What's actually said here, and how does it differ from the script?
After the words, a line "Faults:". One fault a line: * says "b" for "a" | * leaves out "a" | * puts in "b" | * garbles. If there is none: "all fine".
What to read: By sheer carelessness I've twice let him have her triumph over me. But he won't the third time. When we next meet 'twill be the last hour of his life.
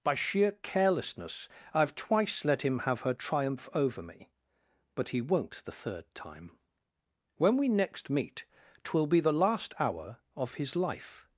By sheer carelessness I've twice let him have her triumph over me. But he won't the third time. When we next meet 'twill be the last hour of his life.
Faults:
all fine